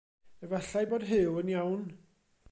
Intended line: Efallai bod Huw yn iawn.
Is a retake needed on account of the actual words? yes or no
no